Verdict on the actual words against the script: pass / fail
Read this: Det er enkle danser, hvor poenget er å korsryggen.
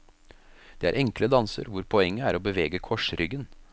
fail